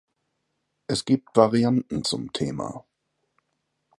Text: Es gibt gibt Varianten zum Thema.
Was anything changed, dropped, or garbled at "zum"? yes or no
no